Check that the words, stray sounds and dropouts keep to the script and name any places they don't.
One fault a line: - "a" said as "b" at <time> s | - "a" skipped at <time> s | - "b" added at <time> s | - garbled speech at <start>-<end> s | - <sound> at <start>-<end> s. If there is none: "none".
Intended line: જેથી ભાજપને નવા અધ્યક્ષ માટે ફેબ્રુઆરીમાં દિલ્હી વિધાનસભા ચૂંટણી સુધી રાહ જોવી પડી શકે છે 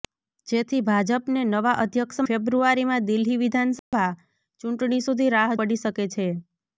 - "માટે" skipped at 2.2 s
- dropout at 3.8-3.9 s
- "જોવી" skipped at 5.5 s